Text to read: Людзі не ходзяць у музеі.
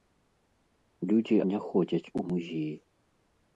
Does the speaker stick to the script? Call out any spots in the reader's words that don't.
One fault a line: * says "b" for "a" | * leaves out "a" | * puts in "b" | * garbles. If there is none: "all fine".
all fine